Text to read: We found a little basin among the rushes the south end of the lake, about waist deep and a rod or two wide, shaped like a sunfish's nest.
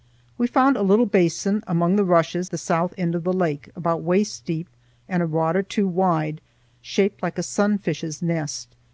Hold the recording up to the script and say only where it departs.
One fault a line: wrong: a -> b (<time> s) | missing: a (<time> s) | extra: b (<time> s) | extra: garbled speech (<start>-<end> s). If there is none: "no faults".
no faults